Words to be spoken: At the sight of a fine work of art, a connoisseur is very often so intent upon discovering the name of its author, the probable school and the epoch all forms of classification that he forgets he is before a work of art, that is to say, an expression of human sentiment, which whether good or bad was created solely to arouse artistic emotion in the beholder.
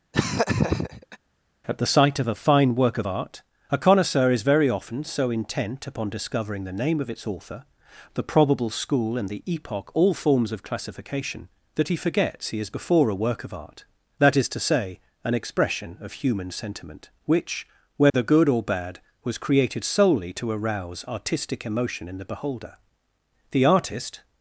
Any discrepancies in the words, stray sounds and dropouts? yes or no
yes